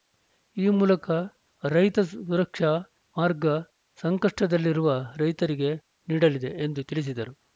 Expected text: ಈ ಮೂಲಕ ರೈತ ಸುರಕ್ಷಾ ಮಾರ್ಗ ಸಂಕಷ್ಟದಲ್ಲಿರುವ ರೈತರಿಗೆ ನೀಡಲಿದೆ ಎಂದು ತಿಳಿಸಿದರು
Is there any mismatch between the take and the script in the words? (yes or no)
no